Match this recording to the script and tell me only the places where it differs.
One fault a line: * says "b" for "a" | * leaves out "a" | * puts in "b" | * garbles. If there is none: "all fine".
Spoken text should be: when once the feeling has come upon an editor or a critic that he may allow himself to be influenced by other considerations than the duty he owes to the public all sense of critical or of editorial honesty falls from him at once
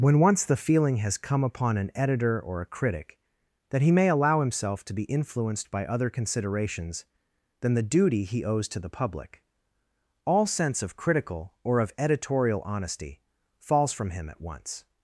all fine